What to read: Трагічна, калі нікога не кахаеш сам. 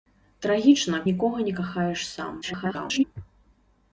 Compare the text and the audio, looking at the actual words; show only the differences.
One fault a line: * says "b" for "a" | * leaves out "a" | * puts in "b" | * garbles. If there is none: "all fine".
* leaves out "калі"
* garbles